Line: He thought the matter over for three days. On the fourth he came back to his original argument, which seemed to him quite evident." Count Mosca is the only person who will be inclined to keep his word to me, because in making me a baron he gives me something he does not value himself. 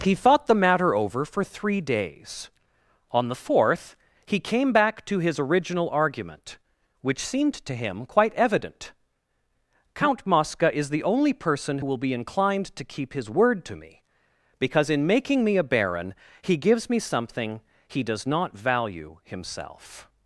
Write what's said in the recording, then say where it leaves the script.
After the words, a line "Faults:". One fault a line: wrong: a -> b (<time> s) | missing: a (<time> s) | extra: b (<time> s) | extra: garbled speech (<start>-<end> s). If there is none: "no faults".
He thought the matter over for three days. On the fourth he came back to his original argument, which seemed to him quite evident." Count Mosca is the only person will be inclined to keep his word to me, because in making me a baron he gives me something he does not value himself.
Faults:
missing: who (11.8 s)